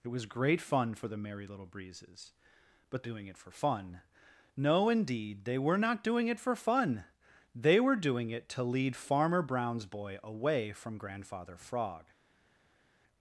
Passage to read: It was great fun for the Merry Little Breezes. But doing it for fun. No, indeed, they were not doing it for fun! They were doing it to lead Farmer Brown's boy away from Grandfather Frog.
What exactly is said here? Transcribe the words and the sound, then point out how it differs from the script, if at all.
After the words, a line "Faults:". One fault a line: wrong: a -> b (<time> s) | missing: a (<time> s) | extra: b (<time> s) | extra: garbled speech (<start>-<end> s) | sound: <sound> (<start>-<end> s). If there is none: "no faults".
It was great fun for the Merry Little Breezes. But doing it for fun. No, indeed, they were not doing it for fun! They were doing it to lead Farmer Brown's boy away from Grandfather Frog.
Faults:
no faults